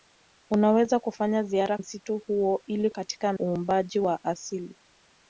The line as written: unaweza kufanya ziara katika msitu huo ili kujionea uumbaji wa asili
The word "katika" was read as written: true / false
false